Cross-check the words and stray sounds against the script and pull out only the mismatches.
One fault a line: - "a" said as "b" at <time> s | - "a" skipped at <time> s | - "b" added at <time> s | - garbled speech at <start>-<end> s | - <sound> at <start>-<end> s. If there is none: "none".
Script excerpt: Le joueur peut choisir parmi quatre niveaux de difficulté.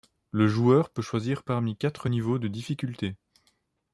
none